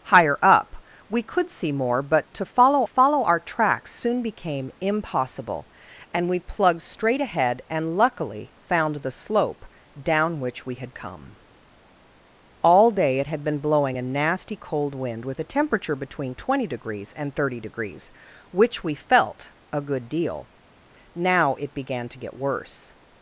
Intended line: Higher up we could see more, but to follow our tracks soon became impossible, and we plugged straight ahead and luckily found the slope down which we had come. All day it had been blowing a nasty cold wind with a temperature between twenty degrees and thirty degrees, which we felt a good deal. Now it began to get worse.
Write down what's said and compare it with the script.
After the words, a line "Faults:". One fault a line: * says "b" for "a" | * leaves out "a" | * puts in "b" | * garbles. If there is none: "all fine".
Higher up we could see more, but to follow follow our tracks soon became impossible, and we plugged straight ahead and luckily found the slope down which we had come. All day it had been blowing a nasty cold wind with a temperature between twenty degrees and thirty degrees, which we felt a good deal. Now it began to get worse.
Faults:
* puts in "follow"